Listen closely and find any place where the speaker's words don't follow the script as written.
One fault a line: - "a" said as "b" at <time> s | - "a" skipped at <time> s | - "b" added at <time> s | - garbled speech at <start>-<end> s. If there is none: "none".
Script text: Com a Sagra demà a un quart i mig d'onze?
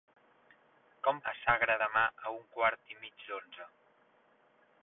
none